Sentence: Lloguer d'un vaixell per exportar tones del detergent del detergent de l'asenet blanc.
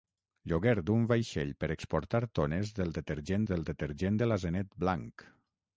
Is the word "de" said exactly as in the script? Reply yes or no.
yes